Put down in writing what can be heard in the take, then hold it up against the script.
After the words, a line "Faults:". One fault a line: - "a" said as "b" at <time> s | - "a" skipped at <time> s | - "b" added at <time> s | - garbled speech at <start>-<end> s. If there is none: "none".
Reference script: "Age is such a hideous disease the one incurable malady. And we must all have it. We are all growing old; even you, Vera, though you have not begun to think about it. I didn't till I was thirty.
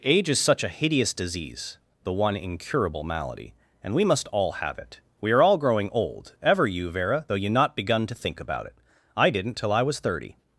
"Age is such a hideous disease the one incurable malady. And we must all have it. We are all growing old; ever you, Vera, though you not begun to think about it. I didn't till I was thirty.
Faults:
- "even" said as "ever" at 6.4 s
- "have" skipped at 7.5 s